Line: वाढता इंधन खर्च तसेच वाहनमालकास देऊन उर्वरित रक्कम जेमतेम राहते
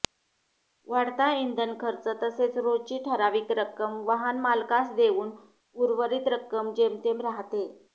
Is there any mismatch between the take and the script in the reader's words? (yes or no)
yes